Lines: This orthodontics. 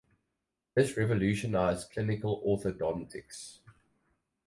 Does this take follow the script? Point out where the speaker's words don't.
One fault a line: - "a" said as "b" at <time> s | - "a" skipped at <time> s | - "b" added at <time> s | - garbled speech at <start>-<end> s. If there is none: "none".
- "revolutionized clinical" added at 1.0 s